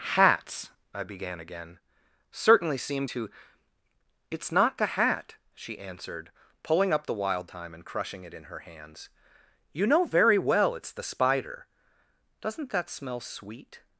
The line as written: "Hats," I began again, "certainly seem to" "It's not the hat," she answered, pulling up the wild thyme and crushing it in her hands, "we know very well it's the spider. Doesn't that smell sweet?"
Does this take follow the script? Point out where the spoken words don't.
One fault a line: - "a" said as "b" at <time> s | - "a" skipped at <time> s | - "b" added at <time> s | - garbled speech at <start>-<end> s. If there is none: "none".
- "we" said as "you" at 9.7 s